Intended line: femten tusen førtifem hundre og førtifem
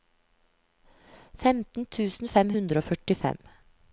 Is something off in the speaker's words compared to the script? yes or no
yes